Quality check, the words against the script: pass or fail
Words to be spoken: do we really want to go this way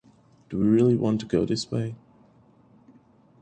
pass